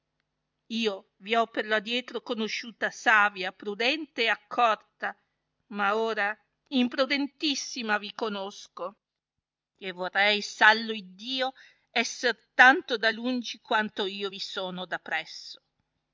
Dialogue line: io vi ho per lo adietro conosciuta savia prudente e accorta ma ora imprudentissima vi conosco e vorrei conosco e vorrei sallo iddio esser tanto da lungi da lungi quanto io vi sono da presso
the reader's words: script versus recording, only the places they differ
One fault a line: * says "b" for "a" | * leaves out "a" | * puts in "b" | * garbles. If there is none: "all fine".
* leaves out "conosco e vorrei"
* leaves out "da lungi"